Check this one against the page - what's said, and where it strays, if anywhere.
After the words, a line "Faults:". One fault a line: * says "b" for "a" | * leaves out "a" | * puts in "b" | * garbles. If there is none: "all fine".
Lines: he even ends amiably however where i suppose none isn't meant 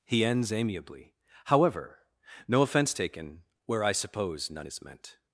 he ends amiably however no offense taken where i suppose none is meant
Faults:
* leaves out "even"
* puts in "no offense taken"
* says "is" for "isn't"